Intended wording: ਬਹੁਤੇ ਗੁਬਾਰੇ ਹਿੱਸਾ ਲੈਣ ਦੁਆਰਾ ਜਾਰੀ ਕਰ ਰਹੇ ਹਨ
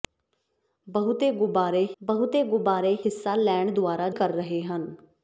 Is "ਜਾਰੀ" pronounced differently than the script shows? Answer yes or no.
yes